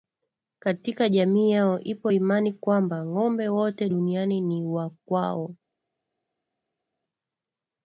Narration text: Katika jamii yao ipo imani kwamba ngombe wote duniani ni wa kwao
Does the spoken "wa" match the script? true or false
true